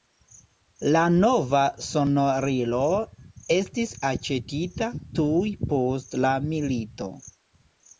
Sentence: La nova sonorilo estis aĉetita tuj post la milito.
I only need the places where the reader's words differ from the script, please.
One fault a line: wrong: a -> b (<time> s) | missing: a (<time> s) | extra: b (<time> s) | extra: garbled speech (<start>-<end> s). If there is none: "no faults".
no faults